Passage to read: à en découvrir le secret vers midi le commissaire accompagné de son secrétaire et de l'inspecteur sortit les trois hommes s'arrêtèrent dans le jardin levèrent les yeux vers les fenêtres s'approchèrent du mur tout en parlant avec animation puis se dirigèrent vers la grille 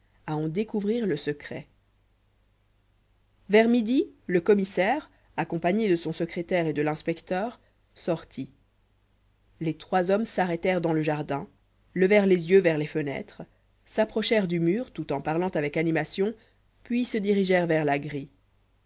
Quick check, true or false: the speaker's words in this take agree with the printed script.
true